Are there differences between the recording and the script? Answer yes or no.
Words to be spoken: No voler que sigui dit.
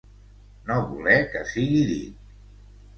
no